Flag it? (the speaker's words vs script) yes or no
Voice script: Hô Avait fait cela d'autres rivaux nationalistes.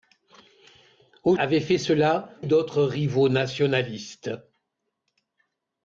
no